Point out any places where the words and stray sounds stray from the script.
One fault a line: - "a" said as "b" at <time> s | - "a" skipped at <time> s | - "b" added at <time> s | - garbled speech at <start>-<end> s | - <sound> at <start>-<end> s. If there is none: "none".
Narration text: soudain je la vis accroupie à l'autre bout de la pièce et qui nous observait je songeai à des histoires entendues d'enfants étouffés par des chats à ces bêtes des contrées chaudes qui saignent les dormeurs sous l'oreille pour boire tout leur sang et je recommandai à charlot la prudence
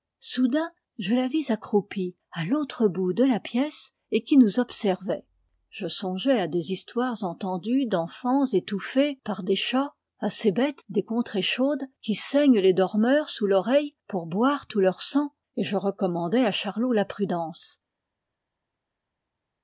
none